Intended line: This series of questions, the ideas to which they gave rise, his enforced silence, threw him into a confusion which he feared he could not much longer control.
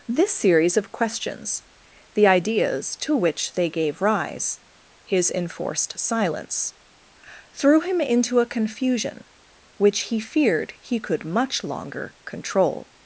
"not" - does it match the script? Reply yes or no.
no